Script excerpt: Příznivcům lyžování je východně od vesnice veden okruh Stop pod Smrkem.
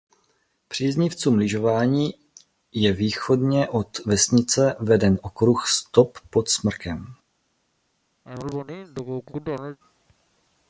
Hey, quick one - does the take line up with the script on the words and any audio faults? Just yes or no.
no